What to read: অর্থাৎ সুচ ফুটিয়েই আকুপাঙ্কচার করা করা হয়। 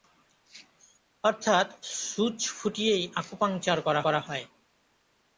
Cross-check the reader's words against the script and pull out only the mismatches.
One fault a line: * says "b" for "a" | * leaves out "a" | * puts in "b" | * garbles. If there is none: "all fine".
all fine